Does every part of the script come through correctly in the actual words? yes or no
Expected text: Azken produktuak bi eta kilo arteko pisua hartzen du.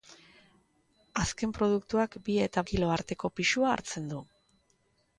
yes